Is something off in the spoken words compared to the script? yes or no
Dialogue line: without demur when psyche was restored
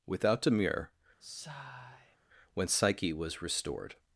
no